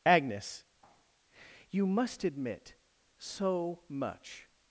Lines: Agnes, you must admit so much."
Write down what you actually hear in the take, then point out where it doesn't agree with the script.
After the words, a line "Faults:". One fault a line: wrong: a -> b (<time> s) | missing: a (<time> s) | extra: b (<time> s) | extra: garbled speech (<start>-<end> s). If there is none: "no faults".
Agnes, you must admit so much."
Faults:
no faults